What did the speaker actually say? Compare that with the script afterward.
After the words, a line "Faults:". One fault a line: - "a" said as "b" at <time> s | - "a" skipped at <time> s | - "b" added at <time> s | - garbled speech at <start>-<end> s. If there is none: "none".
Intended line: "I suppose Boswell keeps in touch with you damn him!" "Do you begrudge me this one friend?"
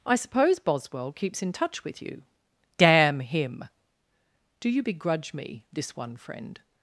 "I suppose Boswell keeps in touch with you damn him!" "Do you begrudge me this one friend?"
Faults:
none